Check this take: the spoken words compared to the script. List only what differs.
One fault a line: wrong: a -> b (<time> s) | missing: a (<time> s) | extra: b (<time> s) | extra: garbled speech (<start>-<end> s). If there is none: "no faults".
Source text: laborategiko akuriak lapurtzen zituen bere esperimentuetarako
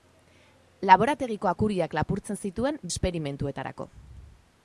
missing: bere (2.8 s)